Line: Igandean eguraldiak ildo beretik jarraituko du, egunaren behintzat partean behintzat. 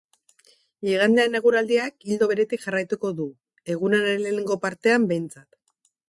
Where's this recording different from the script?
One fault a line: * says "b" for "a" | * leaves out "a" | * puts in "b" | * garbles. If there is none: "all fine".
* says "lehenengo" for "behintzat"